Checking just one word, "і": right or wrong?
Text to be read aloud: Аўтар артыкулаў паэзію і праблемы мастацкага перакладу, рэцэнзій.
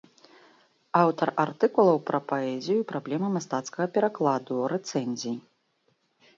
right